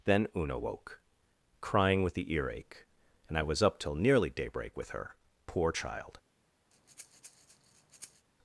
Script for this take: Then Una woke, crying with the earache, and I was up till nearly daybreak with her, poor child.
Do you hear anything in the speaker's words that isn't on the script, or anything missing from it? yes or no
no